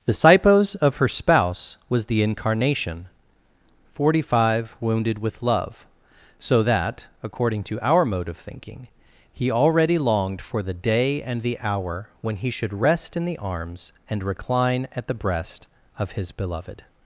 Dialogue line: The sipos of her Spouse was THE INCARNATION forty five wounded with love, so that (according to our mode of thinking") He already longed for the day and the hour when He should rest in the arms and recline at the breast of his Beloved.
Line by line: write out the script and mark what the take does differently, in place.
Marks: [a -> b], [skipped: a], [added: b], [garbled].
The sipos of her Spouse was THE INCARNATION forty five wounded with love, so that (according to our mode of thinking") He already longed for the day and the hour when He should rest in the arms and recline at the breast of his Beloved.